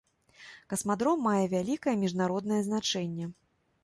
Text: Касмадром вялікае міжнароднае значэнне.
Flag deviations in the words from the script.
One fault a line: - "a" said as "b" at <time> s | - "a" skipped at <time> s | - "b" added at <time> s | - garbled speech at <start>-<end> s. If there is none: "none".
- "мае" added at 1.3 s